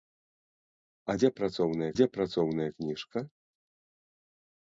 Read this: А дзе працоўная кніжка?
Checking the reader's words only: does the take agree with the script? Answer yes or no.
no